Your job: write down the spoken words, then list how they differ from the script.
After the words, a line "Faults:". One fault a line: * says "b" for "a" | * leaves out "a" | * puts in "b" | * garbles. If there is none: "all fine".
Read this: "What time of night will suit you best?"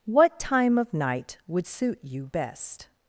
"What time of night would suit you best?"
Faults:
* says "would" for "will"